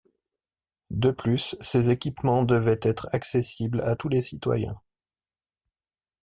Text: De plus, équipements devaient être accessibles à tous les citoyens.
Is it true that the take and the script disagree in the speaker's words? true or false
true